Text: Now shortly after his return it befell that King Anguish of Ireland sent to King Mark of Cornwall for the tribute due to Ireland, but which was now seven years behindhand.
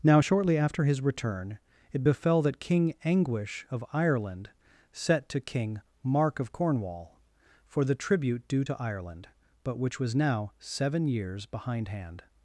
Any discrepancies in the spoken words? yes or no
yes